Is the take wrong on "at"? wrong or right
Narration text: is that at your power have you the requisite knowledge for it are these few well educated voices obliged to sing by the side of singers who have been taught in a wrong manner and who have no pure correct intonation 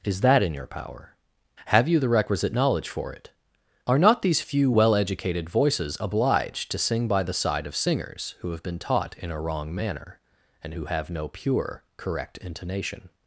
wrong